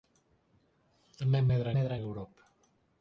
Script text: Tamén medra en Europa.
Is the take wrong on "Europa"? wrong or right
right